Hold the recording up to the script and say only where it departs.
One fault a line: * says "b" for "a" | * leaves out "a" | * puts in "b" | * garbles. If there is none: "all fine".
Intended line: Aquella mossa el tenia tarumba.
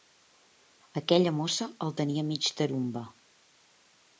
* puts in "mig"